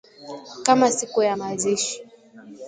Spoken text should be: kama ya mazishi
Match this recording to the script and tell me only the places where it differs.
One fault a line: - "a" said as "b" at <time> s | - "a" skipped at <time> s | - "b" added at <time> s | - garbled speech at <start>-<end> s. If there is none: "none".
- "siku" added at 0.9 s